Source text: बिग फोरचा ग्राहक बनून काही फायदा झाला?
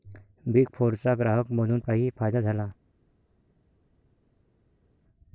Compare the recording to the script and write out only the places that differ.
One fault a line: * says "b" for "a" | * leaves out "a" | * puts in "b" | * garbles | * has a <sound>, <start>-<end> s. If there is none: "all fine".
all fine